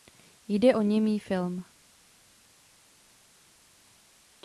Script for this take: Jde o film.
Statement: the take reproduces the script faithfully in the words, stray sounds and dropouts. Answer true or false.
false